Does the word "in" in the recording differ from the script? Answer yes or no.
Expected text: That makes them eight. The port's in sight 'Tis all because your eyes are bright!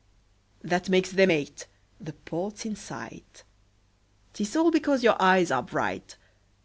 no